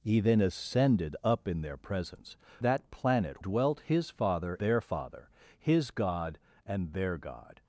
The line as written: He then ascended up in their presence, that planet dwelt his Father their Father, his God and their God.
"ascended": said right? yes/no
yes